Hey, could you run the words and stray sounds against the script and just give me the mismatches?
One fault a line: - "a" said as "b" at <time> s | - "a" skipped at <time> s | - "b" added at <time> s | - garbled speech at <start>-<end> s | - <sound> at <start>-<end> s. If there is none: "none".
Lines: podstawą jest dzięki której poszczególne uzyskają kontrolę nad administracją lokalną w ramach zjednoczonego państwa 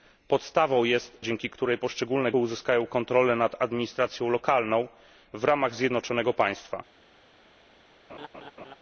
- laugh at 8.1-8.8 s